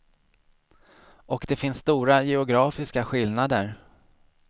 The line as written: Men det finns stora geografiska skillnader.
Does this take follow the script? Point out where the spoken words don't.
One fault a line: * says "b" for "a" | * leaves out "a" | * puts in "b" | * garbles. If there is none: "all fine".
* says "Och" for "Men"